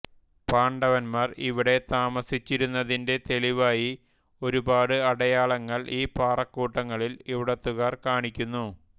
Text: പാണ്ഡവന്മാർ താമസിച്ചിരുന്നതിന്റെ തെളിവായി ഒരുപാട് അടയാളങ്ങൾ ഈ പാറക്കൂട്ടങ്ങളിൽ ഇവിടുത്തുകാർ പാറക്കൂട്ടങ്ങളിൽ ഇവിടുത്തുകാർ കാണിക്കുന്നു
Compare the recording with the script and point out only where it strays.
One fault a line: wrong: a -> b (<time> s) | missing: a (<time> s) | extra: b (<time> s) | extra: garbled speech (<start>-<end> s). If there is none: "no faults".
extra: ഇവിടെ (1.5 s)
missing: പാറക്കൂട്ടങ്ങളിൽ ഇവിടുത്തുകാർ (7.9 s)